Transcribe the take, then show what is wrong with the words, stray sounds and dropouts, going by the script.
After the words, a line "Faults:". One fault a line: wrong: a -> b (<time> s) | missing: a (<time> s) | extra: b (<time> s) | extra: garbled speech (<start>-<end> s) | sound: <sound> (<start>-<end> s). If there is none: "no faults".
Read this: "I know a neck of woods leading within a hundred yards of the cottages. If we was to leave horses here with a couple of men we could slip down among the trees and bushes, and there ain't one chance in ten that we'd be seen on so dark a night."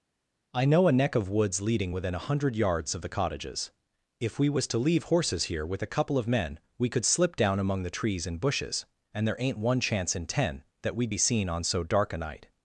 "I know a neck of woods leading within a hundred yards of the cottages. If we was to leave horses here with a couple of men we could slip down among the trees and bushes, and there ain't one chance in ten that we'd be seen on so dark a night."
Faults:
no faults